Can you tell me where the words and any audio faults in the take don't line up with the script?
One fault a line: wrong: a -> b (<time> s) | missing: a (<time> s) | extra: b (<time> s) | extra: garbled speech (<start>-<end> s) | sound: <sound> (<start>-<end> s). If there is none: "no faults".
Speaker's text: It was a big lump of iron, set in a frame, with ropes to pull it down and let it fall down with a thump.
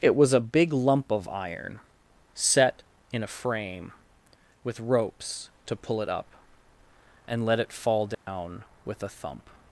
wrong: down -> up (6.1 s)
sound: dropout (8.1-8.3 s)